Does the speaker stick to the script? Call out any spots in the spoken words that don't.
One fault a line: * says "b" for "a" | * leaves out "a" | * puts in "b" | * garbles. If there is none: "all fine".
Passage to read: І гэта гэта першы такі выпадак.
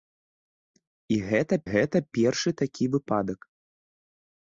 all fine